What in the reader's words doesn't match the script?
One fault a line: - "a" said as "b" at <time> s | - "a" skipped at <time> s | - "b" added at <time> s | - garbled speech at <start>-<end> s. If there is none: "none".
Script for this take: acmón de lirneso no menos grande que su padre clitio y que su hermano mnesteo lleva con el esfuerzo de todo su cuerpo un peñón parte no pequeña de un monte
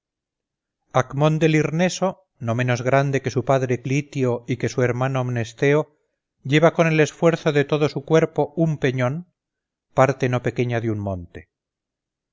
none